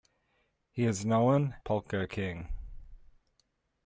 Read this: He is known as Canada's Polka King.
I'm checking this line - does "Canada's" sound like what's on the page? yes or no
no